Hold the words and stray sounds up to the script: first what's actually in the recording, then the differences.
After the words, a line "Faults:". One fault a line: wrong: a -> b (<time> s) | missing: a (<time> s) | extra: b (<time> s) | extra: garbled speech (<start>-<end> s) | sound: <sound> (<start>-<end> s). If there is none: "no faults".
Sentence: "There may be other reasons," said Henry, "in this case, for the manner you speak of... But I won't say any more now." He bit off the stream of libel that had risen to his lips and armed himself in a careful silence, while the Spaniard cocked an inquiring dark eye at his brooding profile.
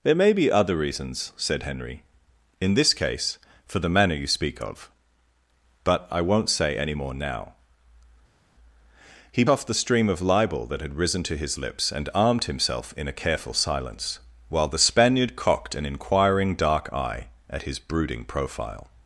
"There may be other reasons," said Henry, "in this case, for the manner you speak of... But I won't say any more now." He off the stream of libel that had risen to his lips and armed himself in a careful silence, while the Spaniard cocked an inquiring dark eye at his brooding profile.
Faults:
missing: bit (9.4 s)